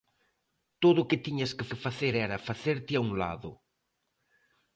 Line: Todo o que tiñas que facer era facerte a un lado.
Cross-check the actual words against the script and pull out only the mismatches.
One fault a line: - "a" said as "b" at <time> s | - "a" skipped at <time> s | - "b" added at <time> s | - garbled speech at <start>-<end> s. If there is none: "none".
- "que" added at 1.7 s